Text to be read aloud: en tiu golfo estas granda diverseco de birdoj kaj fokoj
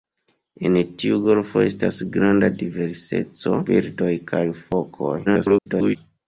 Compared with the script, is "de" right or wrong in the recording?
wrong